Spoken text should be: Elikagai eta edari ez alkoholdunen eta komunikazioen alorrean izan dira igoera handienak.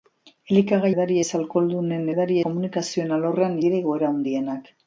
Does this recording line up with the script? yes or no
no